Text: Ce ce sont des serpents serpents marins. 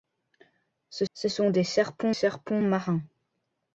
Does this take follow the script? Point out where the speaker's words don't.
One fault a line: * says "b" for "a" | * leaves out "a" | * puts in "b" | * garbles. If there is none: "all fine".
all fine